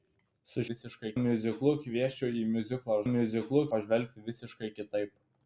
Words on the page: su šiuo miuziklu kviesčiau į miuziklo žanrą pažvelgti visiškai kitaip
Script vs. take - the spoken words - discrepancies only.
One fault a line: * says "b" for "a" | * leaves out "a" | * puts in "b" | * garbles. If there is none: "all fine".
* says "visiškai" for "šiuo"
* says "miuziklu" for "žanrą"